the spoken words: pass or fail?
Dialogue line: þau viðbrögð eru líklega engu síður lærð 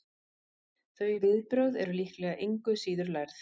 pass